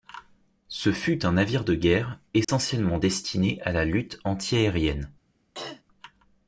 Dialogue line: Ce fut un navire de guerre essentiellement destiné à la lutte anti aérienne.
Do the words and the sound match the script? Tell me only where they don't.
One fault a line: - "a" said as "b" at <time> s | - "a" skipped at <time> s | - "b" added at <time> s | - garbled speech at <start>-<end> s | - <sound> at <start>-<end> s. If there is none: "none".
- dropout at 2.4-2.5 s
- throat clearing at 5.5-5.8 s